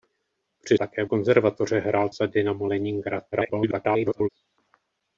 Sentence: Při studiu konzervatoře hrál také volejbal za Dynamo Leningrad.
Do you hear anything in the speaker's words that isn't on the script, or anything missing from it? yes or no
yes